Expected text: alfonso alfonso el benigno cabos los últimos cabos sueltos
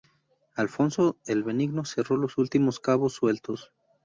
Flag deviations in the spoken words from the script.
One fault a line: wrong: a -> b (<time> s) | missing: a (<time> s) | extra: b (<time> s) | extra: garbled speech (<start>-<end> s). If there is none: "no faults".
missing: alfonso (1.2 s)
wrong: cabos -> cerró (1.9 s)